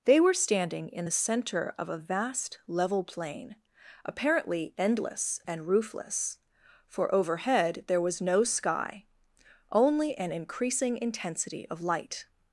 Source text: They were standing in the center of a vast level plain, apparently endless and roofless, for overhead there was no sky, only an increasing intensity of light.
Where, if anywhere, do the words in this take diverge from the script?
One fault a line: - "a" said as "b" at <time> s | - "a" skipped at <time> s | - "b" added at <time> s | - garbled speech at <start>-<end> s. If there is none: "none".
none